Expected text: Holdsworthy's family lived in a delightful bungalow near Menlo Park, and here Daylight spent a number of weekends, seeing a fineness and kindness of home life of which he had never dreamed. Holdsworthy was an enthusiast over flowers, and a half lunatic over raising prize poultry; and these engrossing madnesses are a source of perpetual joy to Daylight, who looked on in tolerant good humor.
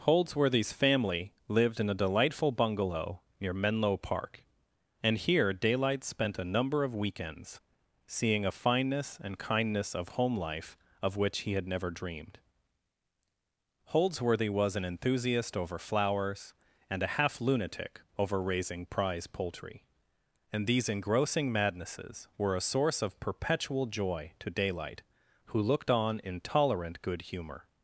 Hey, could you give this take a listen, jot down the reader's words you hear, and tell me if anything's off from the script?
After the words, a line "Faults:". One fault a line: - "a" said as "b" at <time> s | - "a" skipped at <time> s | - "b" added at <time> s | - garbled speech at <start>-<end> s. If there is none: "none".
Holdsworthy's family lived in a delightful bungalow near Menlo Park, and here Daylight spent a number of weekends, seeing a fineness and kindness of home life of which he had never dreamed. Holdsworthy was an enthusiast over flowers, and a half lunatic over raising prize poultry; and these engrossing madnesses were a source of perpetual joy to Daylight, who looked on in tolerant good humor.
Faults:
- "are" said as "were" at 22.4 s